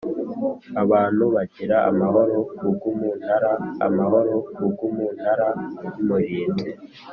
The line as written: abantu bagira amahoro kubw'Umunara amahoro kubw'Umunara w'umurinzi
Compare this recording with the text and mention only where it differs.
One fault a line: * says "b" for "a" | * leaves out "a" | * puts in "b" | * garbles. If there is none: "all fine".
all fine